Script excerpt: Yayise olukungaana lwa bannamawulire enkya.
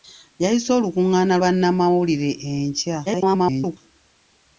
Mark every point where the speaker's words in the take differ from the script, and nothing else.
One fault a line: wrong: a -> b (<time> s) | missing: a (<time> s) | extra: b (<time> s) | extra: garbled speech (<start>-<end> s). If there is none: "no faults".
missing: lwa (1.4 s)
extra: garbled speech (3.1-3.8 s)